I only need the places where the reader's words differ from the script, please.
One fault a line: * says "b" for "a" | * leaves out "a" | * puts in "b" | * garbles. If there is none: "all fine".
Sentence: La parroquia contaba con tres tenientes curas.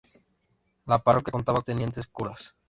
* leaves out "con tres"